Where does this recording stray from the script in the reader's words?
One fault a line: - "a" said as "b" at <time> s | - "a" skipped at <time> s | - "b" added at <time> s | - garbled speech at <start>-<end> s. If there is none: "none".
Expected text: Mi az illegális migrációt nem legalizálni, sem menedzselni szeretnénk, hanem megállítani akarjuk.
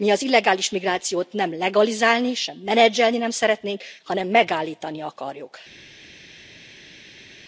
- "nem" added at 3.2 s